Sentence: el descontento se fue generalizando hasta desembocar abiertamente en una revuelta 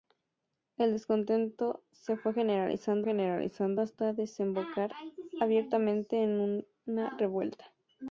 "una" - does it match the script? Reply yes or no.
yes